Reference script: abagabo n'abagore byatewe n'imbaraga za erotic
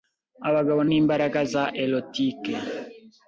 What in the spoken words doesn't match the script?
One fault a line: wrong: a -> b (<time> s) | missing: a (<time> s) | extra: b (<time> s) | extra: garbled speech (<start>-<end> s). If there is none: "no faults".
missing: n'abagore byatewe (0.8 s)